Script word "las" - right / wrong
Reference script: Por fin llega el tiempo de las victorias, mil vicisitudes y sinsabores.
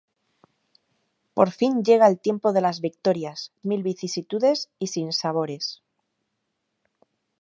right